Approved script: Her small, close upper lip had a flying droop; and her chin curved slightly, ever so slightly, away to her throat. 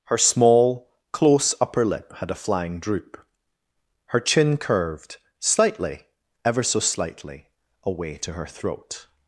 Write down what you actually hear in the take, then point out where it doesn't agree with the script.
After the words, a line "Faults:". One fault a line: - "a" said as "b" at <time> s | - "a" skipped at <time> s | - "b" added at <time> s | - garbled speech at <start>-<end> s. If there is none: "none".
Her small, close upper lip had a flying droop; her chin curved slightly, ever so slightly, away to her throat.
Faults:
- "and" skipped at 3.2 s